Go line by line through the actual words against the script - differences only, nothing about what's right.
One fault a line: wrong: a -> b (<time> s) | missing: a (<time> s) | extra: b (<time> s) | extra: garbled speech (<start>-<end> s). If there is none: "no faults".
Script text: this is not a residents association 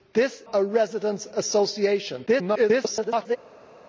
missing: is not (0.4 s)
extra: garbled speech (2.3-3.4 s)